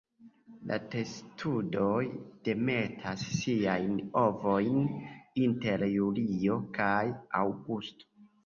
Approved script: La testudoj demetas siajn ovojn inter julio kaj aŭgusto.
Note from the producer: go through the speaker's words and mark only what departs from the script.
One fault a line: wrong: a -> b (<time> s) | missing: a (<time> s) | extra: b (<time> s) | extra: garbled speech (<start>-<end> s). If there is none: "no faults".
no faults